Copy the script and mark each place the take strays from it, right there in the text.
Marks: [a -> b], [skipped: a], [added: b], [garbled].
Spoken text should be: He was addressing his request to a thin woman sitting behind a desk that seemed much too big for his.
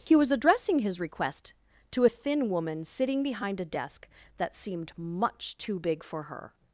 He was addressing his request to a thin woman sitting behind a desk that seemed much too big for [his. -> her]